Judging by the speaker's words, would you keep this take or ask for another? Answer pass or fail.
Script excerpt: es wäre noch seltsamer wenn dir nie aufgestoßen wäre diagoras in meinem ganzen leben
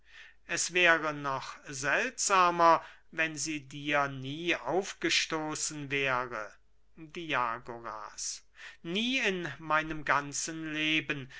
fail